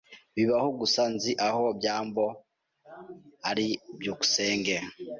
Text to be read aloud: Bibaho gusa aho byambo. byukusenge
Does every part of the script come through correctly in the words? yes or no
no